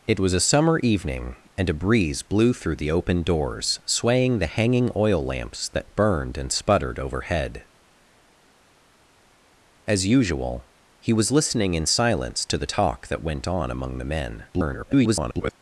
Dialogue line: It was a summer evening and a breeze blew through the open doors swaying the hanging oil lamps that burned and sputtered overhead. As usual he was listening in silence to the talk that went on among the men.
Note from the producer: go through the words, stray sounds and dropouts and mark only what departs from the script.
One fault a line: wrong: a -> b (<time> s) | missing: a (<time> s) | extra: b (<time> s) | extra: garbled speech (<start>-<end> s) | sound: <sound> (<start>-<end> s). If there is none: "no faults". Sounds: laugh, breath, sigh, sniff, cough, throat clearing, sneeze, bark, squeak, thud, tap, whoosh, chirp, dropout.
extra: garbled speech (14.5-15.5 s)